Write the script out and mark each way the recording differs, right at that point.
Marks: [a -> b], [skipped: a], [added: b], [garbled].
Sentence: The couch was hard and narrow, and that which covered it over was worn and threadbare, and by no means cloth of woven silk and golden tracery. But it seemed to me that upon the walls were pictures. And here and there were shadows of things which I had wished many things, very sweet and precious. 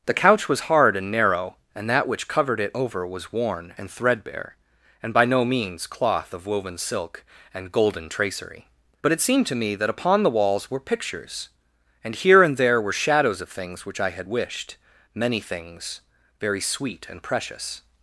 The couch was hard and narrow, and that which covered it over was worn and threadbare, and by no means cloth of woven silk and golden tracery. But it seemed to me that upon the walls were pictures. And here and there were shadows of things which I had wished many things, very sweet and precious.